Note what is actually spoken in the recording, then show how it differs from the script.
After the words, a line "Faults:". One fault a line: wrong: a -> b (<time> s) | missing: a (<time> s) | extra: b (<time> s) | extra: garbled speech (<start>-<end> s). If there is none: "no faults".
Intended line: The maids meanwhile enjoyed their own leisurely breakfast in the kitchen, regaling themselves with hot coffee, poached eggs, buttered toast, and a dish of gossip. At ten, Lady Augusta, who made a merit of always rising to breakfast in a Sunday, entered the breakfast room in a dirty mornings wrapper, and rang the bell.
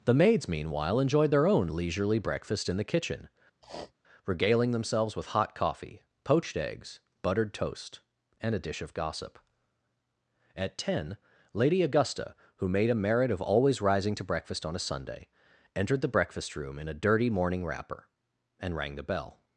The maids meanwhile enjoyed their own leisurely breakfast in the kitchen, regaling themselves with hot coffee, poached eggs, buttered toast, and a dish of gossip. At ten, Lady Augusta, who made a merit of always rising to breakfast on a Sunday, entered the breakfast room in a dirty morning wrapper, and rang the bell.
Faults:
wrong: in -> on (14.6 s)
wrong: mornings -> morning (17.3 s)